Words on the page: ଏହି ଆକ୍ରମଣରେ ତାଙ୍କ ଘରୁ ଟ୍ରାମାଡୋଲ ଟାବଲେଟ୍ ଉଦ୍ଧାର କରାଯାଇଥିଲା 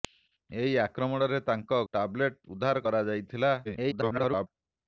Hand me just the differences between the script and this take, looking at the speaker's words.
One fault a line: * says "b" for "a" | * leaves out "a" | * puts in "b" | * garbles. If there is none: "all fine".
* leaves out "ଘରୁ ଟ୍ରାମାଡୋଲ"
* garbles